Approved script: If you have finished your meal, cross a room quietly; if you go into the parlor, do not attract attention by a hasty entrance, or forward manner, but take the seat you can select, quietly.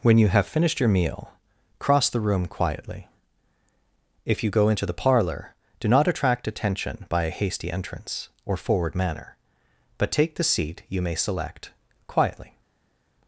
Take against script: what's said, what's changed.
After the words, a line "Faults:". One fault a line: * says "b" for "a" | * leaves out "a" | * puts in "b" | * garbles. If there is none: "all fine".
When you have finished your meal, cross the room quietly; if you go into the parlor, do not attract attention by a hasty entrance, or forward manner, but take the seat you may select, quietly.
Faults:
* says "When" for "If"
* says "the" for "a"
* says "may" for "can"